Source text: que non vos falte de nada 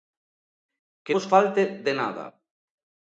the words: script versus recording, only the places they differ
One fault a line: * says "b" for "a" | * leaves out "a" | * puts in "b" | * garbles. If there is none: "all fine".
* leaves out "non"